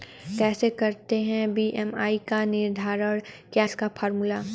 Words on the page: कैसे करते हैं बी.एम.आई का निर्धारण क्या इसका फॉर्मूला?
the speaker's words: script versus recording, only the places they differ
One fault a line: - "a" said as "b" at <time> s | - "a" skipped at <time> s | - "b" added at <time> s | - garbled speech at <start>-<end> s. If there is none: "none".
none